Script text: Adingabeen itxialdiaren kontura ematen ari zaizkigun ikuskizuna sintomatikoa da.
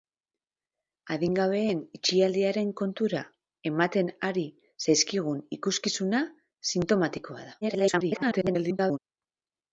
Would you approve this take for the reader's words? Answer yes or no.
no